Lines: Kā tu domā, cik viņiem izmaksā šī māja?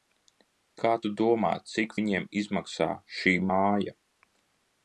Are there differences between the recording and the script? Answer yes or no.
no